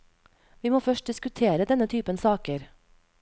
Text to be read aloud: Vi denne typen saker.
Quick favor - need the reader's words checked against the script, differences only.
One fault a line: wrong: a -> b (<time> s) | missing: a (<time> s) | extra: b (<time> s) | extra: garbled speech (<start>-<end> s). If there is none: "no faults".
extra: må først diskutere (0.7 s)